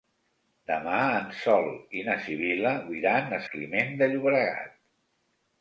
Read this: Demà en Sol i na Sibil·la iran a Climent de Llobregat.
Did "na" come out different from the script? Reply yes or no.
no